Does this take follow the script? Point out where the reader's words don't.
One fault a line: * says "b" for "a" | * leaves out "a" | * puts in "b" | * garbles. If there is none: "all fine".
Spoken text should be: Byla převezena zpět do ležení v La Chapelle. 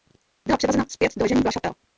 all fine